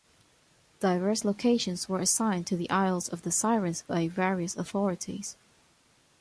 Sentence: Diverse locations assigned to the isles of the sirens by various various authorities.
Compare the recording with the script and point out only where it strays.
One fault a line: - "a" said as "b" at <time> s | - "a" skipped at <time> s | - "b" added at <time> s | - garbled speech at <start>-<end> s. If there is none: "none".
- "were" added at 1.9 s
- "various" skipped at 4.6 s